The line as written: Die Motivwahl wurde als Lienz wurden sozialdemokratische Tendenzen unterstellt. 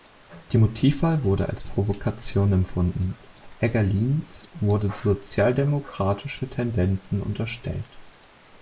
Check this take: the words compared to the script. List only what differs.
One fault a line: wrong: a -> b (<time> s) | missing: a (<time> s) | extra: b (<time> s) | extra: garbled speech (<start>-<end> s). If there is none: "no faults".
extra: Provokation empfunden Egger (1.6 s)